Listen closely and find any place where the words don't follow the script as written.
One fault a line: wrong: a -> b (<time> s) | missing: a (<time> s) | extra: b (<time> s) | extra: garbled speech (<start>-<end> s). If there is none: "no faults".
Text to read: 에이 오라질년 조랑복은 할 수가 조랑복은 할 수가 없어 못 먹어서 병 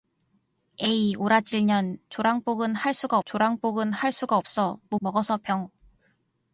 no faults